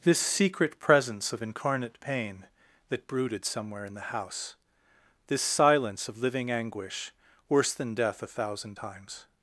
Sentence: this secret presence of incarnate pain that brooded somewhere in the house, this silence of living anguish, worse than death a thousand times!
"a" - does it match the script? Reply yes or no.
yes